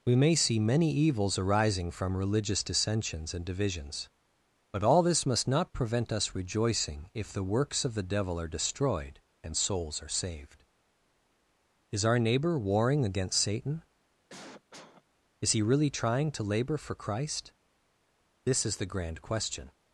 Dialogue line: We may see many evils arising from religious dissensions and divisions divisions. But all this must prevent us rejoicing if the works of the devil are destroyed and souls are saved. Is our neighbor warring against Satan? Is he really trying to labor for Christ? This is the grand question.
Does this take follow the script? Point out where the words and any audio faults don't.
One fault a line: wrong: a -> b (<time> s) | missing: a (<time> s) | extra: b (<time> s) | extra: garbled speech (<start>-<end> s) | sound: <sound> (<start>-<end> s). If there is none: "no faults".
missing: divisions (4.1 s)
extra: not (5.5 s)
sound: cough (14.3-15.0 s)